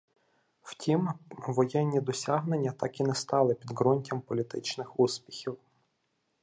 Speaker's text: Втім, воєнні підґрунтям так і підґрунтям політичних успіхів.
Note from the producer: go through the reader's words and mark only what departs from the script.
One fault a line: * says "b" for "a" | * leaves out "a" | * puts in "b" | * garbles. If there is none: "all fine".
* says "досягнення" for "підґрунтям"
* puts in "не стали"